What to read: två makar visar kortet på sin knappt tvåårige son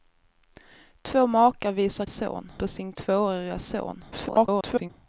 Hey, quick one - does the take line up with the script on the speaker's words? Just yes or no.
no